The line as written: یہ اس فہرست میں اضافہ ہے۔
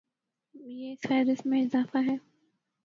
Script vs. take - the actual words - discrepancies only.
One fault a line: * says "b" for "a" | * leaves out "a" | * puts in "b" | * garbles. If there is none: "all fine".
all fine